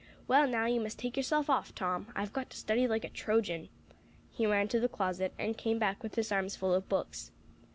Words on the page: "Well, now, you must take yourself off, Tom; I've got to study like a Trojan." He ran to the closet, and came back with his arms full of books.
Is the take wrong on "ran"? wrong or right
right